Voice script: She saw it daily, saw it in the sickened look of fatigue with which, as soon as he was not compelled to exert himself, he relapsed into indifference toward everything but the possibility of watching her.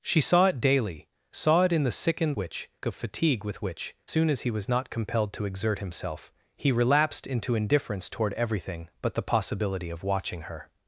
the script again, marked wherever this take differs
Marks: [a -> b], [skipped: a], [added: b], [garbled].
She saw it daily, saw it in the sickened [look -> which] of fatigue with which, [skipped: as] soon as he was not compelled to exert himself, he relapsed into indifference toward everything but the possibility of watching her.